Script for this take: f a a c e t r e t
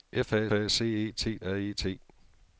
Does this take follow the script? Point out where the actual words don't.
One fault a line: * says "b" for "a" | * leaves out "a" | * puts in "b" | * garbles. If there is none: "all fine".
all fine